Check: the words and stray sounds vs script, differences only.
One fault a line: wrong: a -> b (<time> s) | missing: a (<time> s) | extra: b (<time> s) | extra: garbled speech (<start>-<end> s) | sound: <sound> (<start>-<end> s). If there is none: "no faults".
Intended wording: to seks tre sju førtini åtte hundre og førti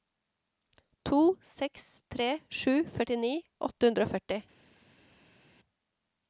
no faults